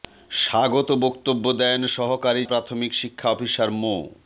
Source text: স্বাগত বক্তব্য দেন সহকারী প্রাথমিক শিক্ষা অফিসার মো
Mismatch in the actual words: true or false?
false